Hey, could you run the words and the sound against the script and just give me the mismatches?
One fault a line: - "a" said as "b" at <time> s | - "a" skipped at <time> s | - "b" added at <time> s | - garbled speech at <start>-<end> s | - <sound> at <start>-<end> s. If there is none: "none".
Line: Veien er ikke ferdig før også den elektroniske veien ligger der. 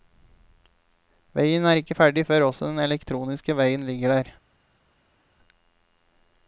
none